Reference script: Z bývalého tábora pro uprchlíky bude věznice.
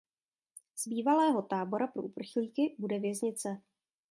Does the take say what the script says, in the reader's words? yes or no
yes